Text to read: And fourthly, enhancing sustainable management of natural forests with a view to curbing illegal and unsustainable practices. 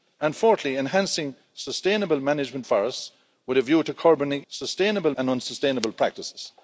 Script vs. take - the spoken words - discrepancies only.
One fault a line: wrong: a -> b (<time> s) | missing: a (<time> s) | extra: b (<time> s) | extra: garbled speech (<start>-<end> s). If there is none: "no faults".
missing: of natural (2.6 s)
wrong: illegal -> sustainable (4.5 s)